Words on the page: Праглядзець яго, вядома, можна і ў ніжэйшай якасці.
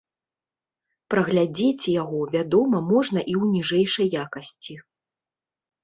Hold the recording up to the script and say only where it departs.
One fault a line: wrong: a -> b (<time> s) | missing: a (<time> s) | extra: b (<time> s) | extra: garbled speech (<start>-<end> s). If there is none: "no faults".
no faults